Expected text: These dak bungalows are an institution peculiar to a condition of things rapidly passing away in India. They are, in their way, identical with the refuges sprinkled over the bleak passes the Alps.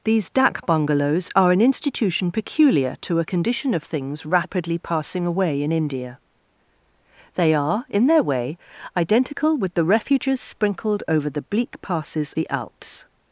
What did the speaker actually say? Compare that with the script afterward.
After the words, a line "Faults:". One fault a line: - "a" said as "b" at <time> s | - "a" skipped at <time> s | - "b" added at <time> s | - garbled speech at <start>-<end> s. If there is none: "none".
These dak bungalows are an institution peculiar to a condition of things rapidly passing away in India. They are, in their way, identical with the refuges sprinkled over the bleak passes the Alps.
Faults:
none